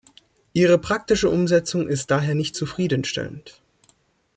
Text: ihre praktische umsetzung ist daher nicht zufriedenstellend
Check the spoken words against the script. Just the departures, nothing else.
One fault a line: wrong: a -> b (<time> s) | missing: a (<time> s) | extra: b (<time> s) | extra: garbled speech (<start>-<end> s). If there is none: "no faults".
no faults